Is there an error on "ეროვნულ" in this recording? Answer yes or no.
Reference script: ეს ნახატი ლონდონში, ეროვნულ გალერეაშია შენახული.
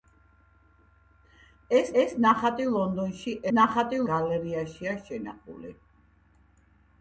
yes